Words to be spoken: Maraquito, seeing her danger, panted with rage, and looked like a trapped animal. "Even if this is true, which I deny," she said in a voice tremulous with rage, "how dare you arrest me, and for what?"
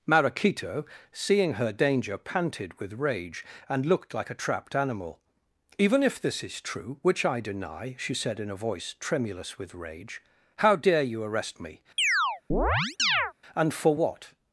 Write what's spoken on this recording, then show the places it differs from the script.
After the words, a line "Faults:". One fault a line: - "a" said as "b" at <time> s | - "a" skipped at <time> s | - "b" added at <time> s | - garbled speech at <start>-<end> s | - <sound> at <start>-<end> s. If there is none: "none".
Maraquito, seeing her danger, panted with rage, and looked like a trapped animal. "Even if this is true, which I deny," she said in a voice tremulous with rage, "how dare you arrest me, and for what?"
Faults:
- chirp at 12.0-13.3 s